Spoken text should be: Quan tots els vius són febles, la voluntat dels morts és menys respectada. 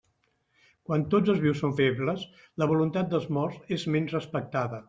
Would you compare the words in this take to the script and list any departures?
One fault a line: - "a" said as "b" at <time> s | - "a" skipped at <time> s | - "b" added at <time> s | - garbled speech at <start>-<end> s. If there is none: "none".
none